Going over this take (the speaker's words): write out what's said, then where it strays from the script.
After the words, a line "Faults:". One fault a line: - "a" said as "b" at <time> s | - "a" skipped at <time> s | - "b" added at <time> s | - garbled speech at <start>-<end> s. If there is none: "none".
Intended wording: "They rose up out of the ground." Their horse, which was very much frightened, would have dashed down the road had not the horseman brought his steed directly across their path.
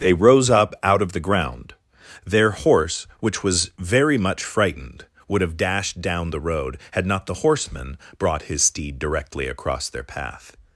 "They rose up out of the ground." Their horse, which was very much frightened, would have dashed down the road had not the horseman brought his steed directly across their path.
Faults:
none